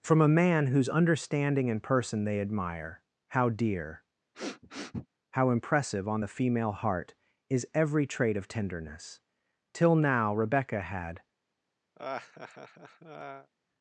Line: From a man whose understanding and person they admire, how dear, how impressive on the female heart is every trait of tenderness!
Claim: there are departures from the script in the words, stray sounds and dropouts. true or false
true